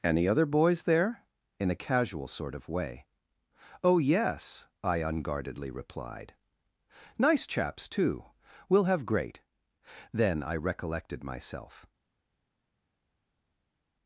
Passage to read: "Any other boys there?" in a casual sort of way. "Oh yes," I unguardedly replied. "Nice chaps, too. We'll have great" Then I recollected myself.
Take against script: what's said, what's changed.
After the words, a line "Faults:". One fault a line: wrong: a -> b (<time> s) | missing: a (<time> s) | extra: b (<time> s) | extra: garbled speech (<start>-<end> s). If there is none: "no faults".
"Any other boys there?" in a casual sort of way. "Oh yes," I unguardedly replied. "Nice chaps, too. We'll have great" Then I recollected myself.
Faults:
no faults